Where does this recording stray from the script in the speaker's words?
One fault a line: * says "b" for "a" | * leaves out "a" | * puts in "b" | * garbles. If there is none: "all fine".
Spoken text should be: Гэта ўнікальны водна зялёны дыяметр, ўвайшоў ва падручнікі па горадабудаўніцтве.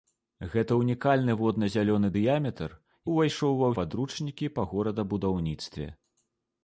all fine